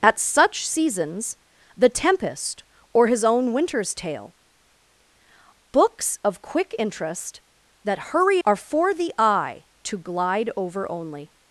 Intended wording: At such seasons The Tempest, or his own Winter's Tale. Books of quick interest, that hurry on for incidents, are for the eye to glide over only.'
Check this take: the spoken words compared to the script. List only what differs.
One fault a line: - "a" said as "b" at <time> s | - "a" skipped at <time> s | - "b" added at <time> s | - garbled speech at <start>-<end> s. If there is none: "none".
- "on for incidents" skipped at 8.4 s